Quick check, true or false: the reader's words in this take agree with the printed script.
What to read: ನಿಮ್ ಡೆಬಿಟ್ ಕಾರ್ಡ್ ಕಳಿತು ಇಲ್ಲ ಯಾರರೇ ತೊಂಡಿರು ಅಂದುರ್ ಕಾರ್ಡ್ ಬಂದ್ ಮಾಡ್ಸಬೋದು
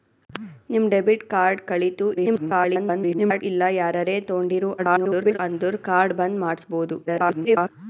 false